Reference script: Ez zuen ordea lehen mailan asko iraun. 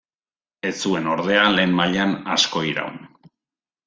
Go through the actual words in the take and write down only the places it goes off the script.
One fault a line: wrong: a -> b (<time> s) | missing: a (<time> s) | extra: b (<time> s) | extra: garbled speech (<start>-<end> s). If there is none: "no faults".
no faults